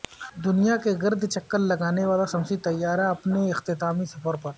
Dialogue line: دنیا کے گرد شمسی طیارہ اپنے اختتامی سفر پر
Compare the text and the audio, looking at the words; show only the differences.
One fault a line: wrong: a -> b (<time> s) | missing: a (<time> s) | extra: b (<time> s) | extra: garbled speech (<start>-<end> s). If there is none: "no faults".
extra: چکر لگانے والا (1.3 s)